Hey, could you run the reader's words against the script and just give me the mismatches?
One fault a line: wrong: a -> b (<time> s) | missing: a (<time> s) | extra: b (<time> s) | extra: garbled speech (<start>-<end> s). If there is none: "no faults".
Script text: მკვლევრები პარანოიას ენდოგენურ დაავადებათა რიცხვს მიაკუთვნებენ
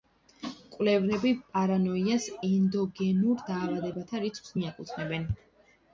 no faults